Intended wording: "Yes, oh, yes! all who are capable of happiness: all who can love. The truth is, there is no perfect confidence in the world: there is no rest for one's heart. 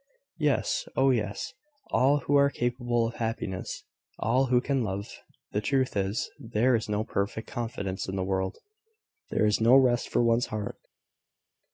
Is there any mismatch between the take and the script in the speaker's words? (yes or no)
no